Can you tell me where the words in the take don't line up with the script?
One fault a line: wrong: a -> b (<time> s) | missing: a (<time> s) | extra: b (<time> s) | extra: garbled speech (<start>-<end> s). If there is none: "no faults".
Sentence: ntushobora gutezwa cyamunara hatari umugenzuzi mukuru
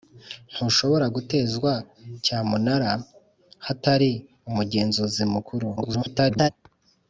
extra: garbled speech (5.8-6.5 s)